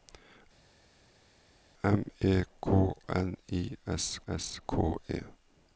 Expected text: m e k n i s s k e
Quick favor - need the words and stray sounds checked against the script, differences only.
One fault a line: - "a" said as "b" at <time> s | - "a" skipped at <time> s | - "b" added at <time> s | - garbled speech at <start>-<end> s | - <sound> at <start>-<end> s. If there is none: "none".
none